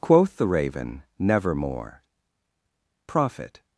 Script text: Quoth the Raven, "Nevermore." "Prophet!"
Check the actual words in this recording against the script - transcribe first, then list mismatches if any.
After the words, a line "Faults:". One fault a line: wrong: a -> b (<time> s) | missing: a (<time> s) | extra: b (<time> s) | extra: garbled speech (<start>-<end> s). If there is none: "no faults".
Quoth the Raven, "Nevermore." "Prophet!"
Faults:
no faults